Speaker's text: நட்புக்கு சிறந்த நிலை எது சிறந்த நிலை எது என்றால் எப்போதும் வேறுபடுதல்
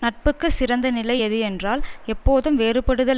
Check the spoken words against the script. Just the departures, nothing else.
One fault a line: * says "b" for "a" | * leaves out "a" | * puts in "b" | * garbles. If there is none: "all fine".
* leaves out "சிறந்த நிலை எது"